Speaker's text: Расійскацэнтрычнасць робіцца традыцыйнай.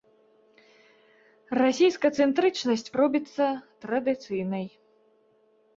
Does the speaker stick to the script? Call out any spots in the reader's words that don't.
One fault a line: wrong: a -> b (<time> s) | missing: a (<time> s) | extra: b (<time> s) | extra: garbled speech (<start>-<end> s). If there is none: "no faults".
no faults